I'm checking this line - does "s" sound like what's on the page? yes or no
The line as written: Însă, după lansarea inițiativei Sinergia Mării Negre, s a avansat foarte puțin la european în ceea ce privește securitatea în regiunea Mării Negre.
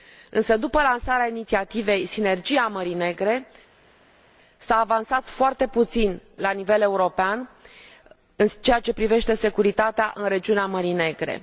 yes